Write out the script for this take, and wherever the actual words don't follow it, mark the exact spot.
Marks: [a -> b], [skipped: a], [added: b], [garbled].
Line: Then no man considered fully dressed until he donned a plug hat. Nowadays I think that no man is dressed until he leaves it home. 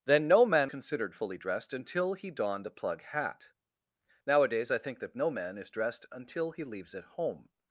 Then no man considered fully dressed until he donned a plug hat. Nowadays I think that no man is dressed until he leaves it home.